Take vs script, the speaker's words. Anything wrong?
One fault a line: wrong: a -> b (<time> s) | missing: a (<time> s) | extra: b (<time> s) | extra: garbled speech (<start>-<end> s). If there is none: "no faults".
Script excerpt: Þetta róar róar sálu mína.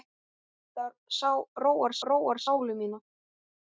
no faults